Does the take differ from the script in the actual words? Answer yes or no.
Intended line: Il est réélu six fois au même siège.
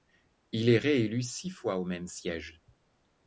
no